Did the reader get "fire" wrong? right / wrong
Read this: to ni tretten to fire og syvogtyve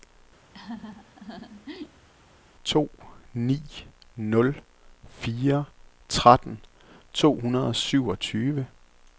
wrong